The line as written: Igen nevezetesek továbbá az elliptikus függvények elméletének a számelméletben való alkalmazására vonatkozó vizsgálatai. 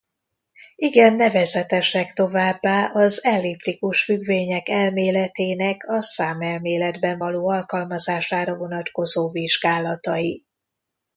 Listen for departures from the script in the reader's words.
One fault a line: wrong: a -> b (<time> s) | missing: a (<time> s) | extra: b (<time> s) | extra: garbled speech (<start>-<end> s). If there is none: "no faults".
no faults